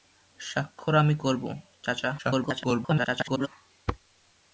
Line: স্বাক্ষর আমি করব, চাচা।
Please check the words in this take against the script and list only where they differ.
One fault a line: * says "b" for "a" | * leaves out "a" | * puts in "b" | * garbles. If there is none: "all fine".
* garbles